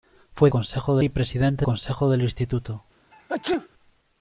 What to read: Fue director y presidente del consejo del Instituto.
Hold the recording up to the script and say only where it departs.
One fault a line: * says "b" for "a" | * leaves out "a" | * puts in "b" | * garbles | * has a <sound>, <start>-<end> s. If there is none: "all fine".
* says "consejo" for "director"
* leaves out "del"
* has a sneeze, 3.1-3.7 s